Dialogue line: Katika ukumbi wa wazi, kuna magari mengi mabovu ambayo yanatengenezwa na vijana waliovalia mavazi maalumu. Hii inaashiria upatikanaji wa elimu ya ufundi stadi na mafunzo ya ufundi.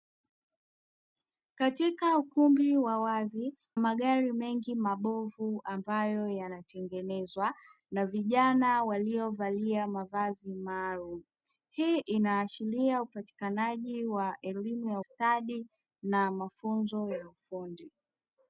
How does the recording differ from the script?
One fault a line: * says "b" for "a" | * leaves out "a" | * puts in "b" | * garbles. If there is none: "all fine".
* leaves out "kuna"
* leaves out "ufundi"